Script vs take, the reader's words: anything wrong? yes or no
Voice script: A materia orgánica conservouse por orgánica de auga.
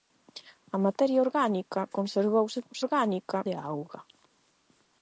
no